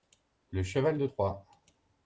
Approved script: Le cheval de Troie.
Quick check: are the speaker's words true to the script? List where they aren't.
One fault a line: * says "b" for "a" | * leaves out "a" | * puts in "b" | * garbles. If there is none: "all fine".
all fine